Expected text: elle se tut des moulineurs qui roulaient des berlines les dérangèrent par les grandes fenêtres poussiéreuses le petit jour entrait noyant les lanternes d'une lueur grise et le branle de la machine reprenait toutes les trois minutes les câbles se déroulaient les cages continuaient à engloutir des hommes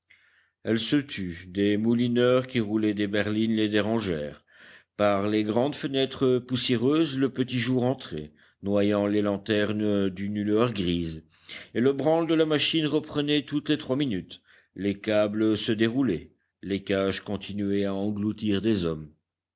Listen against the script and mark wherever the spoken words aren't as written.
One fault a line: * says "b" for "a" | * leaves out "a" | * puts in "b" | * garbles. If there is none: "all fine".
all fine